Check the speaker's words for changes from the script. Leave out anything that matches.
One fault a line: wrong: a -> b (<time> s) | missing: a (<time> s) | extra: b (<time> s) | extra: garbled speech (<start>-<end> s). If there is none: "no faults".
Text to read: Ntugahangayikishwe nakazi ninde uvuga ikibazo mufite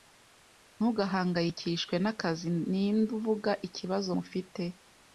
no faults